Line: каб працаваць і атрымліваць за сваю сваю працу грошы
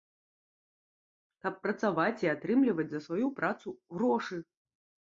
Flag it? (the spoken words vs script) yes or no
yes